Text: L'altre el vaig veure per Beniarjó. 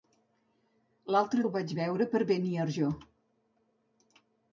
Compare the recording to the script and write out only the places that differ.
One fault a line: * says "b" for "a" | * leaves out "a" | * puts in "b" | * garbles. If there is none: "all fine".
all fine